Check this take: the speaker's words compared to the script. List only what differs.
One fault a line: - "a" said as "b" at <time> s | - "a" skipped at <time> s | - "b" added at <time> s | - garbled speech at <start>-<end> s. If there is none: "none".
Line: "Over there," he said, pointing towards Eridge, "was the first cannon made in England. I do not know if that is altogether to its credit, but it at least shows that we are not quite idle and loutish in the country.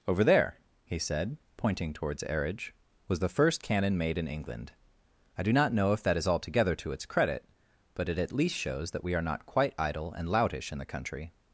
none